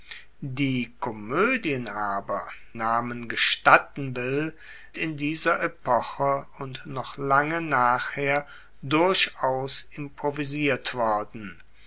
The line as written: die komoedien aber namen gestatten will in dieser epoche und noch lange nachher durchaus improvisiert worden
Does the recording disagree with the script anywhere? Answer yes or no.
no